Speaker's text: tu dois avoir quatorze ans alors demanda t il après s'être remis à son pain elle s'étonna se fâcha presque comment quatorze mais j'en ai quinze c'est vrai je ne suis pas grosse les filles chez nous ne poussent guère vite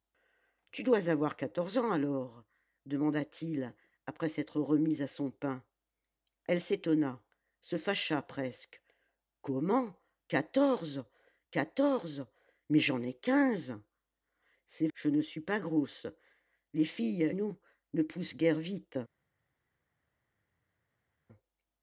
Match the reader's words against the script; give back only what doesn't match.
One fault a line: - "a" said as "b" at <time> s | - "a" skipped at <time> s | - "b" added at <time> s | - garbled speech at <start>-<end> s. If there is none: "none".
- "quatorze" added at 11.5 s
- "vrai" skipped at 14.9 s
- "chez" skipped at 17.3 s